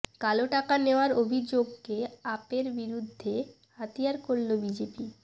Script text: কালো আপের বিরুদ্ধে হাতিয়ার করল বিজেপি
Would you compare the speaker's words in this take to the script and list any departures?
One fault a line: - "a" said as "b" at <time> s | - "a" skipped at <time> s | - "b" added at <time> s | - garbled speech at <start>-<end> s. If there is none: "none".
- "টাকা নেওয়ার অভিযোগকে" added at 0.5 s